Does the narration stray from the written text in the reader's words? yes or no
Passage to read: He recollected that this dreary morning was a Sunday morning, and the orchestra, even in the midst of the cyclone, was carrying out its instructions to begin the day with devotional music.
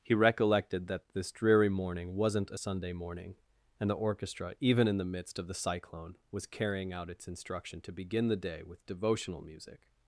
yes